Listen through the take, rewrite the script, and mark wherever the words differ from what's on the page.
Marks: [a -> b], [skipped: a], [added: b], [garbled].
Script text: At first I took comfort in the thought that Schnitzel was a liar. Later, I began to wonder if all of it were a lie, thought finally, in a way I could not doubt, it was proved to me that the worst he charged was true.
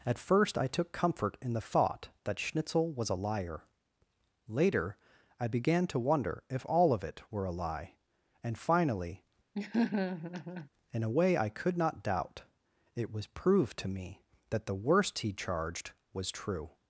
At first I took comfort in the thought that Schnitzel was a liar. Later, I began to wonder if all of it were a lie, [thought -> and] finally, in a way I could not doubt, it was proved to me that the worst he charged was true.